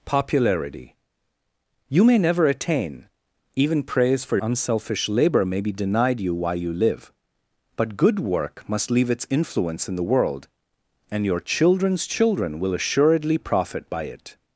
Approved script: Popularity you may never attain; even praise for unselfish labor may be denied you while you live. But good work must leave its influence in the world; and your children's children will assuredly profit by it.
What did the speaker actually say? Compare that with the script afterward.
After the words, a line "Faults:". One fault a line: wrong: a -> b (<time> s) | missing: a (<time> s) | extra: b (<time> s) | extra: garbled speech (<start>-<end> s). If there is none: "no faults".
Popularity you may never attain; even praise for unselfish labor may be denied you while you live. But good work must leave its influence in the world; and your children's children will assuredly profit by it.
Faults:
no faults